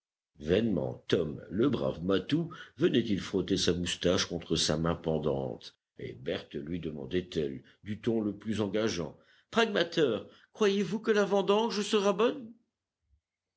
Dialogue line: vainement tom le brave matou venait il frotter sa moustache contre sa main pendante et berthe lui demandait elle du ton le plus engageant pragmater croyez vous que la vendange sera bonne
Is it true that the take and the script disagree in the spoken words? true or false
false